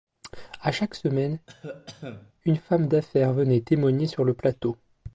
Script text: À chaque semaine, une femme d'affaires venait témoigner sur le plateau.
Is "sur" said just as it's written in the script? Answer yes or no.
yes